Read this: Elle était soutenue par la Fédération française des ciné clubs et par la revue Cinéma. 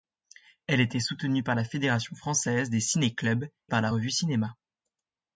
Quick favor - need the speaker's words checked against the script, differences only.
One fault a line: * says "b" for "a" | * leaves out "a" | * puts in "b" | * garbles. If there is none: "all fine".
* leaves out "et"